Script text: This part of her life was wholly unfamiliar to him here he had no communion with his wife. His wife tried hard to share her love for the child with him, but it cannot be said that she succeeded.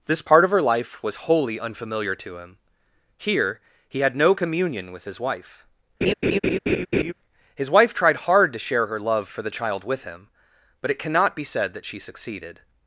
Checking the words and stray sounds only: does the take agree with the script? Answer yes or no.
no